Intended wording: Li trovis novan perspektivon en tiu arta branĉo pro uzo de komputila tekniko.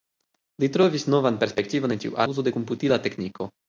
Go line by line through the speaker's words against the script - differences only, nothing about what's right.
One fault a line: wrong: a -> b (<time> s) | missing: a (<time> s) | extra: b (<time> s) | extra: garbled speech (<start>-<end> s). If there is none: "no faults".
missing: arta branĉo pro (2.2 s)